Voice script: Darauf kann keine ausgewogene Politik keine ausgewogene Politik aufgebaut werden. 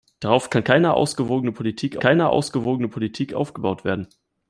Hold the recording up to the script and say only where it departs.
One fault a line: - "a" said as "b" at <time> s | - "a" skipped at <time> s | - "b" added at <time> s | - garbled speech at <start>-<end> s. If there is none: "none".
none